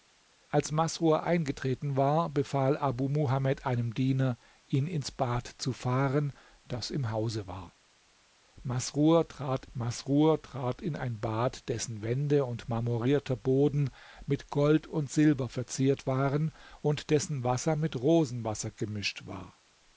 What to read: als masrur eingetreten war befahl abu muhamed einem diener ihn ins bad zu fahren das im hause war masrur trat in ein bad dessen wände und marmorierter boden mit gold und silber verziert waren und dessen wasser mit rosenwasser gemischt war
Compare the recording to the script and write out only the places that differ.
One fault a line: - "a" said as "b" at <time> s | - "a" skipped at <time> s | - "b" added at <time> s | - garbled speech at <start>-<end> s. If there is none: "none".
- "masrur trat" added at 9.7 s